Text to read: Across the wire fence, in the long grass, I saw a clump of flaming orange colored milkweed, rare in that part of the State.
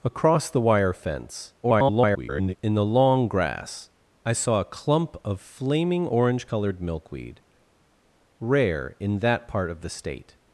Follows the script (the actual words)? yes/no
no